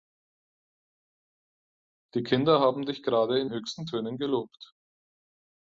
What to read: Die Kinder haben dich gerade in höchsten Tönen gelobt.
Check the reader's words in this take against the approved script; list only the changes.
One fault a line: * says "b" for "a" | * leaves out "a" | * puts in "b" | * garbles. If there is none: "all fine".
all fine